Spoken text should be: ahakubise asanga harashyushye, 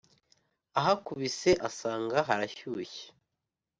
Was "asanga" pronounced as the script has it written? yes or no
yes